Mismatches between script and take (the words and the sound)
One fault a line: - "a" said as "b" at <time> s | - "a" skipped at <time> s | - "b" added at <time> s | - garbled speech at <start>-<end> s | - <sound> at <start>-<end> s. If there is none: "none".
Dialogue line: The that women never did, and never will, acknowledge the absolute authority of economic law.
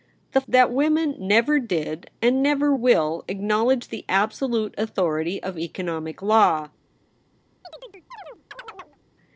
- chirp at 7.6-9.0 s